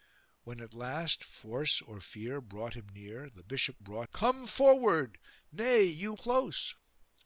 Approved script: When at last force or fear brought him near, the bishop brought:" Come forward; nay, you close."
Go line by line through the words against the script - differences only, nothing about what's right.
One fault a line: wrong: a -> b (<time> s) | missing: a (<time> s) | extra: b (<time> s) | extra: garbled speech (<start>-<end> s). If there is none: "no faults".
no faults